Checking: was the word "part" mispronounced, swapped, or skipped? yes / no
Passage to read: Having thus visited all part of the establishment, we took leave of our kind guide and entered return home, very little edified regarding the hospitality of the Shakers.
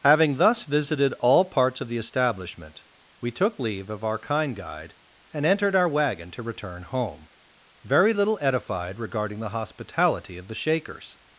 yes